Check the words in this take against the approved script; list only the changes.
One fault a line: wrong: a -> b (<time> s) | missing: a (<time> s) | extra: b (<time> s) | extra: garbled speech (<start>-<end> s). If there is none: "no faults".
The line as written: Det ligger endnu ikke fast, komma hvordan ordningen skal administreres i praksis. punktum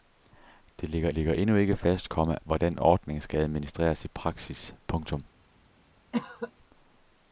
extra: ligger (1.1 s)